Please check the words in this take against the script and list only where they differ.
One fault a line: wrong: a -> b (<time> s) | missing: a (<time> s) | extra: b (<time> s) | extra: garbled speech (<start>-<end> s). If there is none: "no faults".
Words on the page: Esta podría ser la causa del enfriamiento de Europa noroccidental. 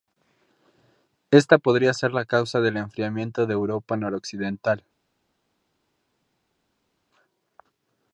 no faults